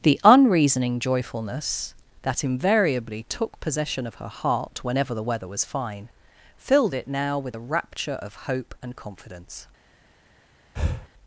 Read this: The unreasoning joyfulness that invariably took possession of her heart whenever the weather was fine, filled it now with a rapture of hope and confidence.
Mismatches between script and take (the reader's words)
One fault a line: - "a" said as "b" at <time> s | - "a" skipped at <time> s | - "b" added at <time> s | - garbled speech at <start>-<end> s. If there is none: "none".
none